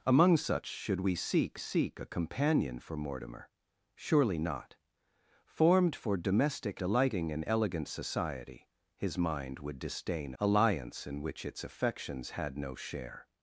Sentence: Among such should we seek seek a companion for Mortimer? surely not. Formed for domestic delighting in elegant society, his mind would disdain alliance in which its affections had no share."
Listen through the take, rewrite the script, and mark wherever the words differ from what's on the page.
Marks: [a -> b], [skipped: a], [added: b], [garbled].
Among such should we seek seek a companion for Mortimer? surely not. Formed for domestic delighting in elegant society, his mind would disdain alliance in which its affections had no share."